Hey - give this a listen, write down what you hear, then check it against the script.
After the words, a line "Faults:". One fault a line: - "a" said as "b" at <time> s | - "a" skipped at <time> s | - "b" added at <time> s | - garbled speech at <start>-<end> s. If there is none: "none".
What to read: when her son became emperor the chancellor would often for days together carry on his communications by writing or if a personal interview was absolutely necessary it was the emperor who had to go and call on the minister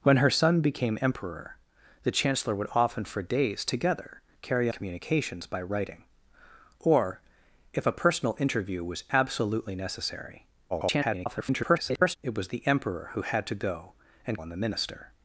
when her son became emperor the chancellor would often for days together carry communications by writing or if a personal interview was absolutely necessary [garbled] it was the emperor who had to go and on the minister
Faults:
- "on his" skipped at 4.7 s
- garbled speech at 10.7-12.2 s
- "call" skipped at 14.4 s